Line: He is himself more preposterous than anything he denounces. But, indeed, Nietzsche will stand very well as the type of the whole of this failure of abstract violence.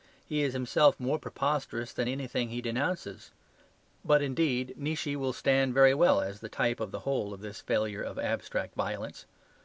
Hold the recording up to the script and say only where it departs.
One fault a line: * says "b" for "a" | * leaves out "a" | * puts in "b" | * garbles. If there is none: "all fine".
all fine